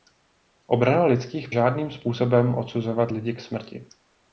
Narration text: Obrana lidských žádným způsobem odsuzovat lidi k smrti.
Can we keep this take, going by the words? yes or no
yes